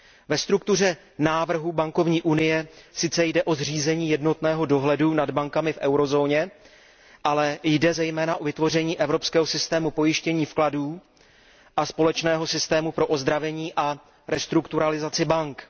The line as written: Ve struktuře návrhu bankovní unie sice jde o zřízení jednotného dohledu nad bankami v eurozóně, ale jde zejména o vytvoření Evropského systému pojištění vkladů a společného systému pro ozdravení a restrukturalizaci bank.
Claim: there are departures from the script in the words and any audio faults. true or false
false